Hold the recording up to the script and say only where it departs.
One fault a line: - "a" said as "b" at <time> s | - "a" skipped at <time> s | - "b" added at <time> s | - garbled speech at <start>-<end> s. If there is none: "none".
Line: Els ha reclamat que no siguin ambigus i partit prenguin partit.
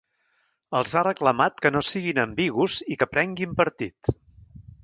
- "partit" said as "que" at 3.0 s